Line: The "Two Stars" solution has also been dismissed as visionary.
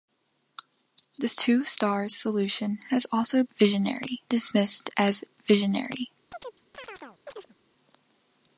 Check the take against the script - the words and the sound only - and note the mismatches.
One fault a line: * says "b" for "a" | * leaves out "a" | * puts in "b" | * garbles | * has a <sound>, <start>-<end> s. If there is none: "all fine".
* says "visionary" for "been"
* has a chirp, 6.3-7.5 s